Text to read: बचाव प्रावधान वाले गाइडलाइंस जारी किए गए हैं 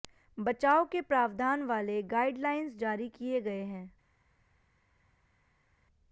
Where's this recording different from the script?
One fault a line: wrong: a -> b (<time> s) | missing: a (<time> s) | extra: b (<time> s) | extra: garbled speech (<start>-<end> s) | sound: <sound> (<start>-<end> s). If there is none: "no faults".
extra: के (0.8 s)